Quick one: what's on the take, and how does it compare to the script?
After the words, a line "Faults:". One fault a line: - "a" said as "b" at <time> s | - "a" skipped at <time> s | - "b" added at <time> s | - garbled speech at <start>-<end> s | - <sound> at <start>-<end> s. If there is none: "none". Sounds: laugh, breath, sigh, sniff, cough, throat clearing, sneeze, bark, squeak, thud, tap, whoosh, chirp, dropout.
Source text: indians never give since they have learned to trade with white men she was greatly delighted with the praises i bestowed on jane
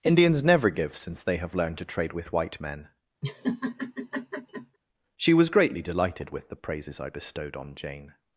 indians never give since they have learned to trade with white men she was greatly delighted with the praises i bestowed on jane
Faults:
- laugh at 3.2-4.8 s